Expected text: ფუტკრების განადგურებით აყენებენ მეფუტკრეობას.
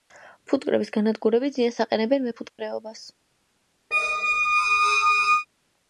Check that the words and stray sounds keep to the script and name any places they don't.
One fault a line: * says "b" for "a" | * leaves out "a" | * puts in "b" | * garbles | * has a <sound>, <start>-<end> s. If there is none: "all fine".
* puts in "ზიანს"
* has a dropout, 2.5-2.6 s
* has a squeak, 3.9-5.5 s